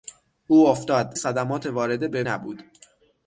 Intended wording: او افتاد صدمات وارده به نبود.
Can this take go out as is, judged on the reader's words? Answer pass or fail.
pass